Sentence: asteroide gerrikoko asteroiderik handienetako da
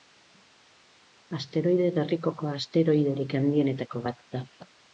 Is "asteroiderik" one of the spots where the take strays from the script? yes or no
no